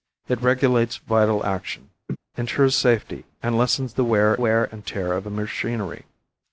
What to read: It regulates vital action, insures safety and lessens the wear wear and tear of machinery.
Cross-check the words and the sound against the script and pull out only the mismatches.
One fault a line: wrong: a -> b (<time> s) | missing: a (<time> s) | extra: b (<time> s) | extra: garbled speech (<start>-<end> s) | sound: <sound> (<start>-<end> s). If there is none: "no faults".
sound: laugh (2.1-2.2 s)